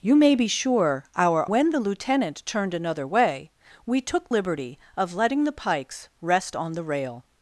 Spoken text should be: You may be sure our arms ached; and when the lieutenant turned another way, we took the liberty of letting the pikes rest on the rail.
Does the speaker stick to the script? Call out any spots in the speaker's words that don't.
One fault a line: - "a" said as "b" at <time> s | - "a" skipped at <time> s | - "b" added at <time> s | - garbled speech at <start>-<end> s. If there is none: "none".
- "arms ached and" skipped at 1.4 s
- "the" skipped at 4.3 s